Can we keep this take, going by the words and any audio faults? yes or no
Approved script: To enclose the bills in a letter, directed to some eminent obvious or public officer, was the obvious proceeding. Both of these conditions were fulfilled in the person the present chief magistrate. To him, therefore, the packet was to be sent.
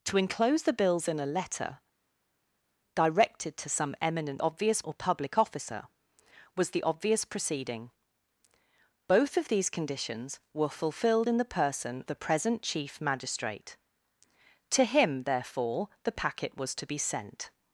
yes